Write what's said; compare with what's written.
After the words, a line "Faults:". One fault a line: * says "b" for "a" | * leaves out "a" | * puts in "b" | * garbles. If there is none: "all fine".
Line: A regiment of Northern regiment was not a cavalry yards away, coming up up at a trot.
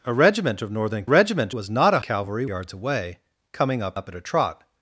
A regiment of Northern regiment was not a cavalry yards away, coming up up at a trot.
Faults:
all fine